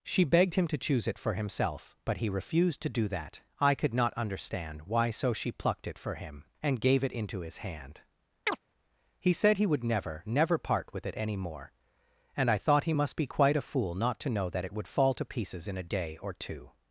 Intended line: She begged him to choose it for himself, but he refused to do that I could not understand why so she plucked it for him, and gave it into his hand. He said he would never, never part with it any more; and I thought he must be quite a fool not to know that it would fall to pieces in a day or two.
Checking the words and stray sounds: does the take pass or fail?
fail